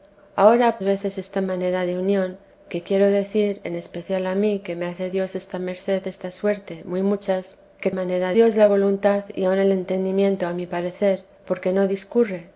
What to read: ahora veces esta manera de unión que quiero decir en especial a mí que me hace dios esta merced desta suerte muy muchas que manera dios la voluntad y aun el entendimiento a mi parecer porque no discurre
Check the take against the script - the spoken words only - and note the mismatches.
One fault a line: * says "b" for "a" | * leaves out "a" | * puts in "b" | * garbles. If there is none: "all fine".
all fine